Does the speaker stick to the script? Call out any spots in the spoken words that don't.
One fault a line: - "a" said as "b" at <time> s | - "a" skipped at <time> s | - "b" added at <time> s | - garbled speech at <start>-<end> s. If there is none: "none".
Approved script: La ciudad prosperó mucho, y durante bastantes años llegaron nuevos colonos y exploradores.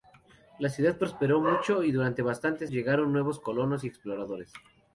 - "años" skipped at 2.7 s